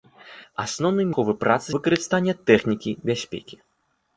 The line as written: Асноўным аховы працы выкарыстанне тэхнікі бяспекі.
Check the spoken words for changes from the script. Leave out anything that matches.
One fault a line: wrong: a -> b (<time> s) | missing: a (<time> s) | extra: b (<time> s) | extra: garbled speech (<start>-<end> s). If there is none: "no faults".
no faults